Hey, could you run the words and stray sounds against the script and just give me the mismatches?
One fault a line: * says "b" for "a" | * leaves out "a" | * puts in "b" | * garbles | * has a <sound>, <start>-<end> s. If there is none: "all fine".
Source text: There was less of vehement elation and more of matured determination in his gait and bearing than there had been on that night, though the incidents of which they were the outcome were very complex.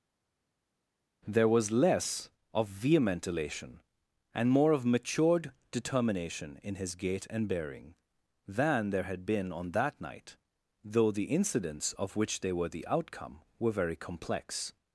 all fine